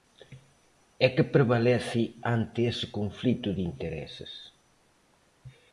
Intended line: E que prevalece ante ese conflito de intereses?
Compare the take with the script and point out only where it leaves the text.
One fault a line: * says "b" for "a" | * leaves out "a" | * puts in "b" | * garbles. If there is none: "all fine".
all fine